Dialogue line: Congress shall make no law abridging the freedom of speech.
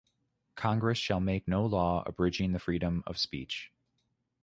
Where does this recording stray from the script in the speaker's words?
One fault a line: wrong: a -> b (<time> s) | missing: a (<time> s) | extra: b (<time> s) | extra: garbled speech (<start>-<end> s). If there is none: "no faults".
no faults